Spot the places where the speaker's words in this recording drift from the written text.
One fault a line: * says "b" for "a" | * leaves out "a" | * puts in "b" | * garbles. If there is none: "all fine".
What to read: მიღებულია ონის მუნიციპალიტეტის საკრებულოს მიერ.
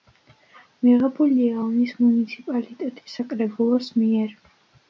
all fine